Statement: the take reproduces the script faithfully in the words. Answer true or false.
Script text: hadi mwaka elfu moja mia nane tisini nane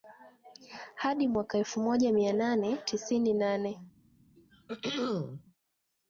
true